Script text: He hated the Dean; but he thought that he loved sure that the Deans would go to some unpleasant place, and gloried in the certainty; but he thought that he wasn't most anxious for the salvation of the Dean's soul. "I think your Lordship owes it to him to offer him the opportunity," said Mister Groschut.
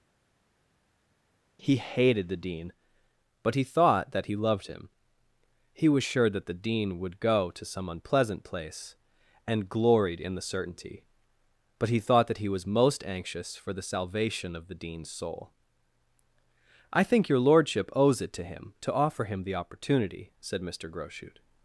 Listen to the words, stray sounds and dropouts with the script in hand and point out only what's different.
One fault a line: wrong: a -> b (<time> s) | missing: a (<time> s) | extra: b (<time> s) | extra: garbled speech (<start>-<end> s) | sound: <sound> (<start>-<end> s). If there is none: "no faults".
extra: him He was (4.7 s)
wrong: Deans -> Dean (6.5 s)
wrong: wasn't -> was (12.5 s)